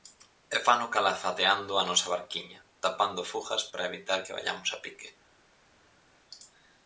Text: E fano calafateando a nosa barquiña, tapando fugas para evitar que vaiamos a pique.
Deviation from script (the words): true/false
false